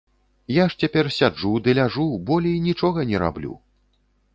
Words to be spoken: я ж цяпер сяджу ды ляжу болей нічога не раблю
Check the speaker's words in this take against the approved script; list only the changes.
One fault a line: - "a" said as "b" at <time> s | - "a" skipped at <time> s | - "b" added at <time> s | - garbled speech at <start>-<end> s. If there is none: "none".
none